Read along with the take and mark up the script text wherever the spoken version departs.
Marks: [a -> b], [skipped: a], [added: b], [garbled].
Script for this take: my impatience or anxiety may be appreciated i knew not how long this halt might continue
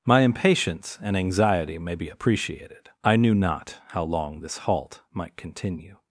my impatience [or -> and] anxiety may be appreciated i knew not how long this halt might continue